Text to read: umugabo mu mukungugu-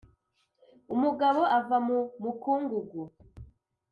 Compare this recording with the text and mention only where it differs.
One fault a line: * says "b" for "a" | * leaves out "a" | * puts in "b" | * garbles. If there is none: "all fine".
* puts in "ava"